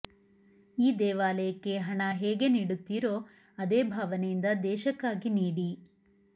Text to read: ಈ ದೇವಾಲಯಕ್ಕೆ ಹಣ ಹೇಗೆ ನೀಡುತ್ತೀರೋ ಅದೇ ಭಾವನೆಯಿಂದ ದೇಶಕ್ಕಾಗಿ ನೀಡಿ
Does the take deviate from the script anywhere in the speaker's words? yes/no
no